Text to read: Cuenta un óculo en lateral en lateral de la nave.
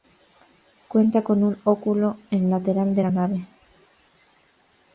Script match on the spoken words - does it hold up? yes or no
no